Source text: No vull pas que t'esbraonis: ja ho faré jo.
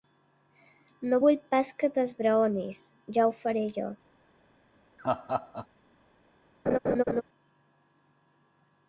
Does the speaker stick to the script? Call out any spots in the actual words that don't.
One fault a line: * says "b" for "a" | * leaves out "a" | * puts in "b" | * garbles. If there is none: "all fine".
all fine